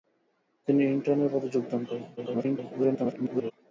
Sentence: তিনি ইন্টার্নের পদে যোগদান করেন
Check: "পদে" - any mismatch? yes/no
no